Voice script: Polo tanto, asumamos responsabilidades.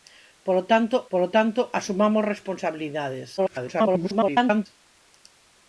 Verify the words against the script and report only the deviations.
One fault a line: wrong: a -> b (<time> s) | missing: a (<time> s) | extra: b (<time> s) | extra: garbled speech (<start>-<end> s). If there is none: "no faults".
extra: polo tanto (1.1 s)
extra: garbled speech (3.4-4.7 s)